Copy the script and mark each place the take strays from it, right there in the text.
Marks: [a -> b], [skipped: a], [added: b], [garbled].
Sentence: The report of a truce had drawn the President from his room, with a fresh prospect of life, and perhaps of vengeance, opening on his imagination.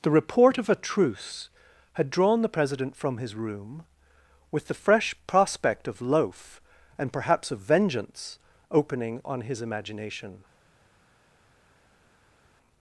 The report of a truce had drawn the President from his room, with [a -> the] fresh prospect of [life, -> loaf] and perhaps of vengeance, opening on his imagination.